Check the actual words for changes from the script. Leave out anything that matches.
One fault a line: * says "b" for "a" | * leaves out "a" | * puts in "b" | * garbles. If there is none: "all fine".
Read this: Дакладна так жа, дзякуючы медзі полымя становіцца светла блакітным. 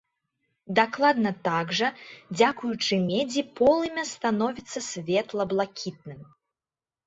all fine